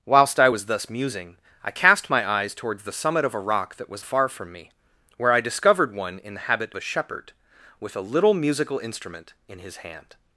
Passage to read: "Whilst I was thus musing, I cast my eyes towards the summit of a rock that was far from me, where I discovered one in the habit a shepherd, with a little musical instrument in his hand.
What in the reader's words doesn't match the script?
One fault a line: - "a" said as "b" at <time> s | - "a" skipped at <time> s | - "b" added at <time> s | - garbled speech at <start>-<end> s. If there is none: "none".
none